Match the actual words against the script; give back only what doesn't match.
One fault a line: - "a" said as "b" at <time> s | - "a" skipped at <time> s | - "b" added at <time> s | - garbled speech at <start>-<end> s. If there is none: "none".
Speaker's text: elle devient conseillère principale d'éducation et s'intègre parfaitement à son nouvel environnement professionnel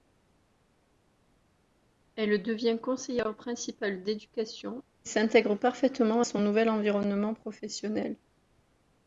none